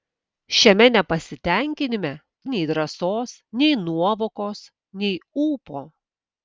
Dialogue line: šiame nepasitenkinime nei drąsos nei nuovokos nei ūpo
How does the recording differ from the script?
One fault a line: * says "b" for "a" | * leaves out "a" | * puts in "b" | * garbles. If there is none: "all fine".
all fine